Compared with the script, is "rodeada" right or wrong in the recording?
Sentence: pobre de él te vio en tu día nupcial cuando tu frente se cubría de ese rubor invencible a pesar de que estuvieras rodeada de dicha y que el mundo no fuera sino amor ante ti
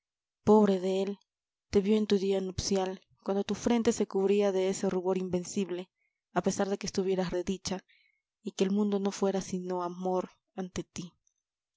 wrong